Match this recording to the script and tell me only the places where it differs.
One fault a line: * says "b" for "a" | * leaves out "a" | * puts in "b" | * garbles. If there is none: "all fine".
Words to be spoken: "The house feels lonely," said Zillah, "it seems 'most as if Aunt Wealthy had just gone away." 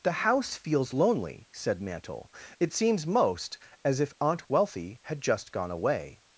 * says "Mantle" for "Zillah"